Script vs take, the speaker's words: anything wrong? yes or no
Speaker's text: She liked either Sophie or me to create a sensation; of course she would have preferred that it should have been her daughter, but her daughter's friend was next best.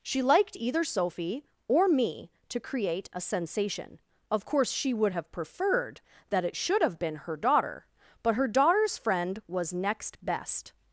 no